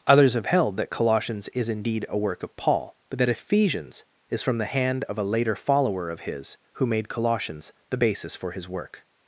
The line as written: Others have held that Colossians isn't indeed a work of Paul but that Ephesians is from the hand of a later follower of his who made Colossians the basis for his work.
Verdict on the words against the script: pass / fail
fail